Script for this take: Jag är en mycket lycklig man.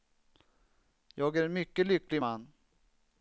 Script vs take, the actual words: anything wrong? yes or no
no